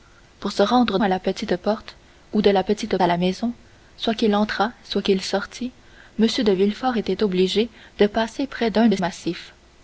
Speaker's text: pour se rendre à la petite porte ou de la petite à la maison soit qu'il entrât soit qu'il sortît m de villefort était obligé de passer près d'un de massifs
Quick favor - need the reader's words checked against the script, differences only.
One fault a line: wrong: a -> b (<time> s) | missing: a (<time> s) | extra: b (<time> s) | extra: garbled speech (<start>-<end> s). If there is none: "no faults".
no faults